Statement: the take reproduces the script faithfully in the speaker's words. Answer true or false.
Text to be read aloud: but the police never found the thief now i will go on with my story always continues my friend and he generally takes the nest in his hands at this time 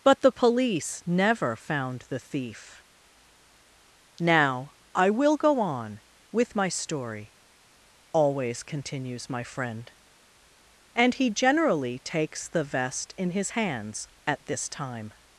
false